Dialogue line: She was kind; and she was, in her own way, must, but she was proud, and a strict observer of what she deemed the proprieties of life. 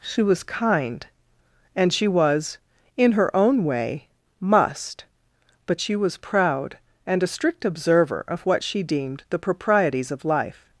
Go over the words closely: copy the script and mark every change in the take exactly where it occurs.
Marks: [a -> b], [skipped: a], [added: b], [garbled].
She was kind; and she was, in her own way, must, but she was proud, and a strict observer of what she deemed the proprieties of life.